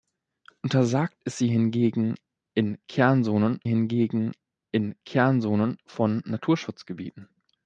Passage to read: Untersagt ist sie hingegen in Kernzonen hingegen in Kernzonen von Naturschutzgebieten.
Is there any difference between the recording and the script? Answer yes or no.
no